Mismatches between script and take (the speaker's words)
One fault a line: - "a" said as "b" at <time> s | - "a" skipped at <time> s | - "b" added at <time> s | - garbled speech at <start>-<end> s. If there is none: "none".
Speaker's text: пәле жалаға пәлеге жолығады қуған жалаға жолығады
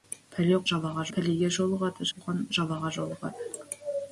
none